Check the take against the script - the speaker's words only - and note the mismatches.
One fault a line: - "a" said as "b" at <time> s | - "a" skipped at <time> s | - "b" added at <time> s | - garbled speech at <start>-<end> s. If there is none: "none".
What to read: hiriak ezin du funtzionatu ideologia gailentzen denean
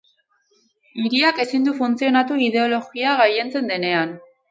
none